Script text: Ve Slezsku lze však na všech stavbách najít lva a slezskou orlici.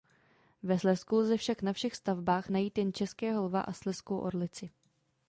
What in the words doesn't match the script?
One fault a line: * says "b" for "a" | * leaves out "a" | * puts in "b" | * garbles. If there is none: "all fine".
* puts in "jen českého"